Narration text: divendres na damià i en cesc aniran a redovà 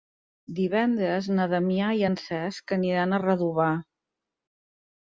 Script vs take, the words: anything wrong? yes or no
no